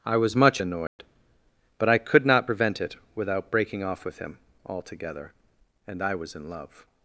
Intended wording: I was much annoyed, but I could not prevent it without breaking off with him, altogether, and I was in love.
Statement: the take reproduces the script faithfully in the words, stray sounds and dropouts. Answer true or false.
false